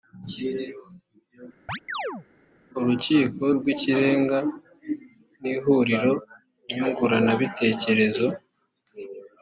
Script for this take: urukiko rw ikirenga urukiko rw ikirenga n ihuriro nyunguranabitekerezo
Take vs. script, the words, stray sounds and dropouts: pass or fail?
fail